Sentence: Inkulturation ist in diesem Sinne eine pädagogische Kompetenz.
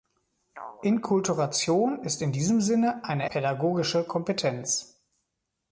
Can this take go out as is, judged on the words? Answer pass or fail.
pass